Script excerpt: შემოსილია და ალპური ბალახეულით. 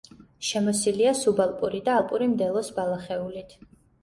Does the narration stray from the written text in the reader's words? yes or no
yes